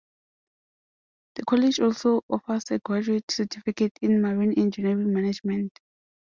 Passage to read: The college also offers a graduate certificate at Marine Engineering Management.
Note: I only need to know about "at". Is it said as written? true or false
false